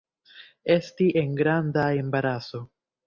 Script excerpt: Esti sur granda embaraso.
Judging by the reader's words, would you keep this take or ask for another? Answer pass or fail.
fail